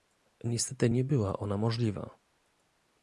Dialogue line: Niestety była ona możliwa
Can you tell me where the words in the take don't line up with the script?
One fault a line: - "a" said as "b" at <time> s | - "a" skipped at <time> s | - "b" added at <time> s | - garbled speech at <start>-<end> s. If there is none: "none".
- "nie" added at 0.9 s